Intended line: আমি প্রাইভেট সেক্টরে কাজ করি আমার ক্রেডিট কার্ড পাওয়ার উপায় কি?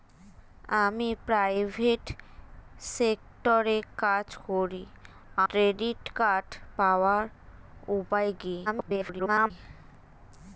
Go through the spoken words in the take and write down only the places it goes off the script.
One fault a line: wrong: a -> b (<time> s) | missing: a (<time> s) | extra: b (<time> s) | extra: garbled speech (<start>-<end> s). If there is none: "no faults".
missing: আমার (4.8 s)
extra: garbled speech (8.7-9.5 s)